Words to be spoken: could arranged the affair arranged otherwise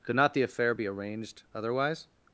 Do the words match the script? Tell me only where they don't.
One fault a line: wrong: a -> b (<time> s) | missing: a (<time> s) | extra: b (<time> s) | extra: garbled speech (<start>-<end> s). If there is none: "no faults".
wrong: arranged -> not (0.1 s)
extra: be (0.7 s)